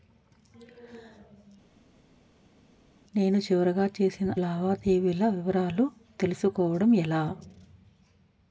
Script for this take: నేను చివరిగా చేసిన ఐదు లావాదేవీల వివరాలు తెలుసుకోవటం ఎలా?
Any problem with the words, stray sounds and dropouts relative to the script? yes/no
yes